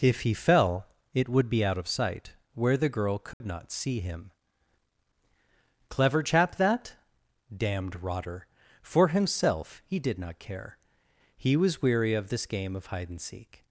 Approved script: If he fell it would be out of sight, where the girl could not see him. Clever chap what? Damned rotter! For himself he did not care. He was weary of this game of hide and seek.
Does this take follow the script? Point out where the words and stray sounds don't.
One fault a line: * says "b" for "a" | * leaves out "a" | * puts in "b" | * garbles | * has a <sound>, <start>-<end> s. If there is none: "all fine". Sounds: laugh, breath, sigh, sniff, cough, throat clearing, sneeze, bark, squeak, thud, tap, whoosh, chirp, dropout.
* has a dropout, 3.3-3.4 s
* says "that" for "what"